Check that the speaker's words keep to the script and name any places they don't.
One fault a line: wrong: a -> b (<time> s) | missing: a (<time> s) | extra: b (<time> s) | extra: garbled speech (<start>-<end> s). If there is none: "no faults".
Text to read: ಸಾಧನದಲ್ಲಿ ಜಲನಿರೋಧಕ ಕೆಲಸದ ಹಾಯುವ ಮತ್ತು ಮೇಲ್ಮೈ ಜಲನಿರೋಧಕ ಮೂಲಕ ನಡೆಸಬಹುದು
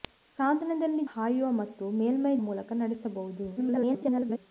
missing: ಜಲನಿರೋಧಕ ಕೆಲಸದ (1.0 s)
missing: ಜಲನಿರೋಧಕ (2.3 s)
extra: garbled speech (3.6-4.4 s)